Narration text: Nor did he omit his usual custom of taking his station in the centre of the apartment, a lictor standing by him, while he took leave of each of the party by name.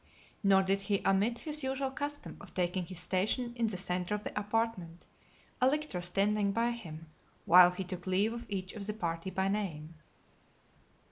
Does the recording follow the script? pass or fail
pass